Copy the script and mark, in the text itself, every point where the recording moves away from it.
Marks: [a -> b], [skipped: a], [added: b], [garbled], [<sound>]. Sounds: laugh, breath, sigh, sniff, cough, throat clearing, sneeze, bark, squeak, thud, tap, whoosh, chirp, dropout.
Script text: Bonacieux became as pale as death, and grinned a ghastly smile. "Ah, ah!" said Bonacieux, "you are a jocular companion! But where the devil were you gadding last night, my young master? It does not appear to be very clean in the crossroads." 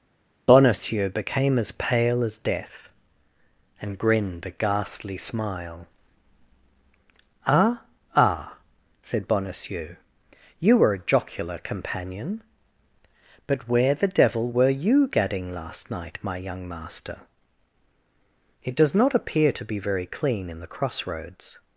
Bonacieux became as pale as death, and grinned a ghastly smile. "Ah, ah!" said Bonacieux, "you [are -> were] a jocular companion! But where the devil were you gadding last night, my young master? It does not appear to be very clean in the crossroads."